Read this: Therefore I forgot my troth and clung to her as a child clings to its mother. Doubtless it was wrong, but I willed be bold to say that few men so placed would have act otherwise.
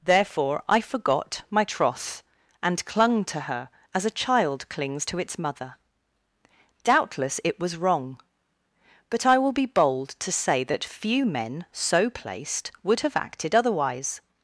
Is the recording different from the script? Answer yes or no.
yes